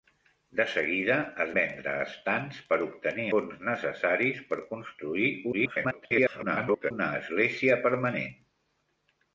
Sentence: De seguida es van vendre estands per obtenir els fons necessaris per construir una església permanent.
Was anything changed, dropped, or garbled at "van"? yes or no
yes